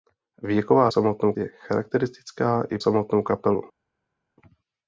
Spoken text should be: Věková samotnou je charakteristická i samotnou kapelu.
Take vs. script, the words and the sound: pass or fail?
pass